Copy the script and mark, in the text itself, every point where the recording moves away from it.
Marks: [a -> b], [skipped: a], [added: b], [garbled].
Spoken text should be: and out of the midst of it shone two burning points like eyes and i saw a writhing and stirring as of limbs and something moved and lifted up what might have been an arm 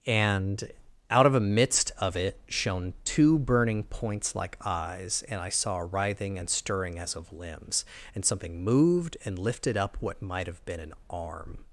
and out of [the -> a] midst of it shone two burning points like eyes and i saw a writhing and stirring as of limbs and something moved and lifted up what might have been an arm